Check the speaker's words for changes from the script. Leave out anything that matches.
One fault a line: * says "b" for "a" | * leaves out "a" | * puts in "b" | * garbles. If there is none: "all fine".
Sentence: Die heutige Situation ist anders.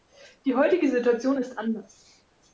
all fine